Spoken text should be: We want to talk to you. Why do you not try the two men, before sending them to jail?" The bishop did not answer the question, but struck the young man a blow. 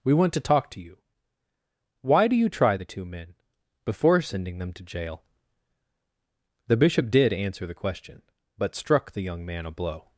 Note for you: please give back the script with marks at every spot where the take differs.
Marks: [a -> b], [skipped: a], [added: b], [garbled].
We want to talk to you. Why do you [skipped: not] try the two men, before sending them to jail?" The bishop did [skipped: not] answer the question, but struck the young man a blow.